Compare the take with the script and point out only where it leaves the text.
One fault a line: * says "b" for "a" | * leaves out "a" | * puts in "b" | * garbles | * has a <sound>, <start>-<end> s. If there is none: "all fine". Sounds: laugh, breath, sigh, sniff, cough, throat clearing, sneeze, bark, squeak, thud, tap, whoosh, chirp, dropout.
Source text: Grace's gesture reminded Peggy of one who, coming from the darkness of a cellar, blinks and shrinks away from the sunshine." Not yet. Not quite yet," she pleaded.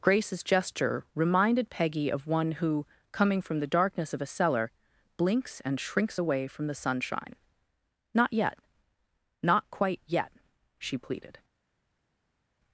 all fine